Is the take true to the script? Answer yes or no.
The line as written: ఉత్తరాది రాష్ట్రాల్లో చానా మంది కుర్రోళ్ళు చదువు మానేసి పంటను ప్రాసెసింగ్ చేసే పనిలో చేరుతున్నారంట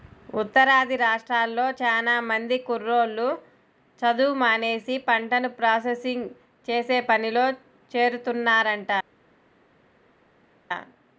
yes